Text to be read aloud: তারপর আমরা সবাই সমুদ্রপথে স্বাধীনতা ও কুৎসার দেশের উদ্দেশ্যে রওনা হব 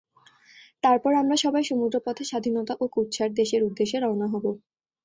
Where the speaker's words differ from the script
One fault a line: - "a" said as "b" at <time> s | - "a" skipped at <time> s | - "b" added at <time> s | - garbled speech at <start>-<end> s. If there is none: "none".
none